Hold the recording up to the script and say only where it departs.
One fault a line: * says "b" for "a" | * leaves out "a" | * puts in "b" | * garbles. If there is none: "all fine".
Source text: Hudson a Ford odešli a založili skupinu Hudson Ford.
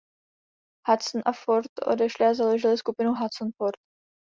all fine